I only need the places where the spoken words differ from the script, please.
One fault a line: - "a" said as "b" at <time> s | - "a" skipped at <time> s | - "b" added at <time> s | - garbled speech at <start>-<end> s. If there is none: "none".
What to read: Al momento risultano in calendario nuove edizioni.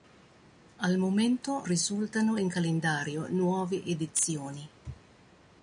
none